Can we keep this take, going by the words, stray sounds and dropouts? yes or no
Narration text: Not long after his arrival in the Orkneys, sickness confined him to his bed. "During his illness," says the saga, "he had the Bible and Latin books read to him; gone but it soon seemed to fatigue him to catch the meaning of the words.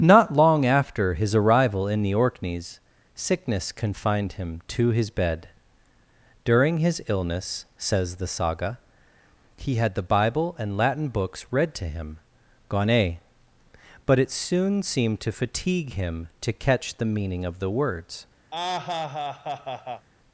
no